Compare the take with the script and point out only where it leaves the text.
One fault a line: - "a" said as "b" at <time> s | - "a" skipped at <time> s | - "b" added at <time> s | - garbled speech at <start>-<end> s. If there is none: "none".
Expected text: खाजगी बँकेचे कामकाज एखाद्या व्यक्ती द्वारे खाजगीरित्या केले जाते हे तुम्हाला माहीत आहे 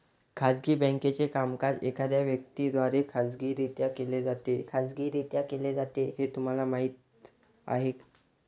- "खाजगीरित्या केले जाते" added at 4.7 s